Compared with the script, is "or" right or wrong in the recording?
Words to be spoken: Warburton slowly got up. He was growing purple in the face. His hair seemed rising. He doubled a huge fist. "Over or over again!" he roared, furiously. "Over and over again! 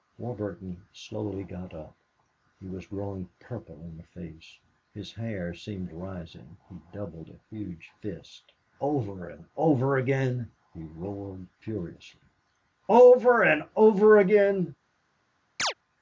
wrong